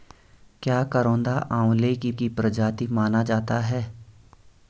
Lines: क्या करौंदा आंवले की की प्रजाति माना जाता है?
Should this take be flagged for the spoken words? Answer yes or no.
no